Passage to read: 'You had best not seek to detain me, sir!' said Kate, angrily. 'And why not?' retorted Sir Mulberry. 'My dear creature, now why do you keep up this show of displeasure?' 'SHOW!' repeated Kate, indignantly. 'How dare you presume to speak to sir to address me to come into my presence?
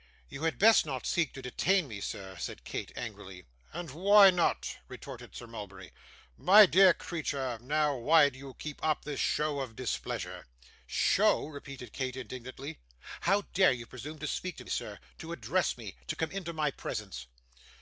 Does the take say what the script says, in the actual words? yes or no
yes